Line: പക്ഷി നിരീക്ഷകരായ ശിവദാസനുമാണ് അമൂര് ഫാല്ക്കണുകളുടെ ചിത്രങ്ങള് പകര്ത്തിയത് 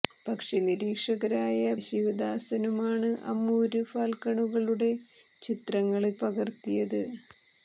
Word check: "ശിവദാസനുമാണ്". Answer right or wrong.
right